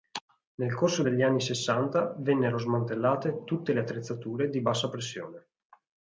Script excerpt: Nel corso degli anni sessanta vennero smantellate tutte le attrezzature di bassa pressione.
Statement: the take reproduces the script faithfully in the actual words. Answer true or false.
true